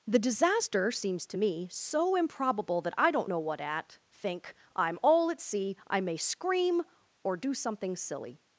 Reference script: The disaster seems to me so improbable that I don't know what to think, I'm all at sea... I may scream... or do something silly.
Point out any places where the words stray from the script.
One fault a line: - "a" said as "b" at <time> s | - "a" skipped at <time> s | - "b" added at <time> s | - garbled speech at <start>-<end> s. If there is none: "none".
- "to" said as "at" at 3.6 s